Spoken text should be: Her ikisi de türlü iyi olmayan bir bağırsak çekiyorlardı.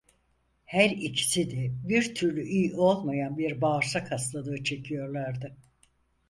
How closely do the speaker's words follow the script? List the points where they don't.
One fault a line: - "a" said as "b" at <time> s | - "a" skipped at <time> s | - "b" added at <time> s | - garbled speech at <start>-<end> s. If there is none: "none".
- "bir" added at 1.9 s
- "hastalığı" added at 4.1 s